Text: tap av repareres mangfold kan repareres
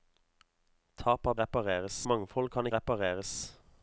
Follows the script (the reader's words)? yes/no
yes